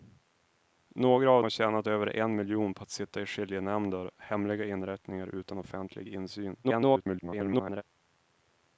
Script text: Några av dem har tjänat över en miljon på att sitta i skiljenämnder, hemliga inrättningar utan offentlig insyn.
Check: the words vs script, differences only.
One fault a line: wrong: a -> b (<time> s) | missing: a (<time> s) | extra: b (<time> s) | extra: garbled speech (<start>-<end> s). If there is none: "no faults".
missing: dem (1.4 s)
extra: garbled speech (6.6-7.8 s)